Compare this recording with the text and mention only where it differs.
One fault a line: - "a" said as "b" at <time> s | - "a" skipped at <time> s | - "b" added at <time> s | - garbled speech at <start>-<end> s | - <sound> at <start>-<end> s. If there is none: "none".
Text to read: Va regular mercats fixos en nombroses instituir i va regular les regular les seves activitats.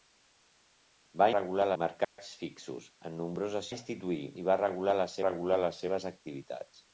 - dropout at 2.0-2.2 s